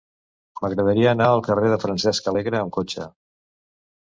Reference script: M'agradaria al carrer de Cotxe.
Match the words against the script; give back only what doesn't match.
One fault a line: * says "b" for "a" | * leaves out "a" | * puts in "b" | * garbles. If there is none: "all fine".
* puts in "anar"
* puts in "Francesc Alegre amb"